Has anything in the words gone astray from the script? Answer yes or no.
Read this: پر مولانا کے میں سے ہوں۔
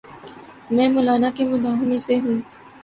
yes